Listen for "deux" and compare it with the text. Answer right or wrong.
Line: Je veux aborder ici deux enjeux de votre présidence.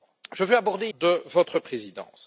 wrong